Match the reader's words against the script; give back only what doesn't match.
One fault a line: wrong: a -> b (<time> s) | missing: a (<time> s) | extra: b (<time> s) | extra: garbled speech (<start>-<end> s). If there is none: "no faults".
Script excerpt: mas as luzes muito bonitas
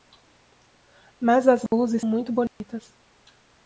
no faults